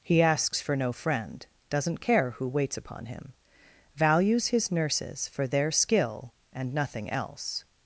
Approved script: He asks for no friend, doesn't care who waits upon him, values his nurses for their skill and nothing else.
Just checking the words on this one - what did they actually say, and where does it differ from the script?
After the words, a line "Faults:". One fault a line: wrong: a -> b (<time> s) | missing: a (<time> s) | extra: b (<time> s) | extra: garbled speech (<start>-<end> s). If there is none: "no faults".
He asks for no friend, doesn't care who waits upon him, values his nurses for their skill and nothing else.
Faults:
no faults